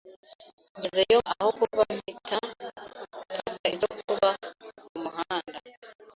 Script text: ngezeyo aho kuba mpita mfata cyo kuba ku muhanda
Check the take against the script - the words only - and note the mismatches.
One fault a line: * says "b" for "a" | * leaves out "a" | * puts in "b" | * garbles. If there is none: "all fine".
all fine